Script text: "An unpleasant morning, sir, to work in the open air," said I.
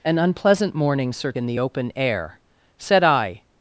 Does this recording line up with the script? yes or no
no